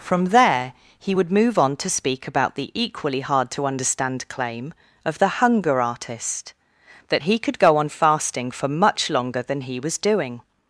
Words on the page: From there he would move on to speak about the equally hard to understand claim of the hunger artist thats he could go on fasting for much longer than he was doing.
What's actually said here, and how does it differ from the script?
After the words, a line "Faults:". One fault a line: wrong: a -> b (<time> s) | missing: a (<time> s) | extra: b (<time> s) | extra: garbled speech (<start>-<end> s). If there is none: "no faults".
From there he would move on to speak about the equally hard to understand claim of the hunger artist that he could go on fasting for much longer than he was doing.
Faults:
wrong: thats -> that (7.1 s)